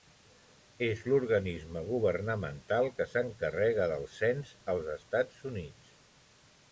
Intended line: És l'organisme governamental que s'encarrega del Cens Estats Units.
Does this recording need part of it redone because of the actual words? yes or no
yes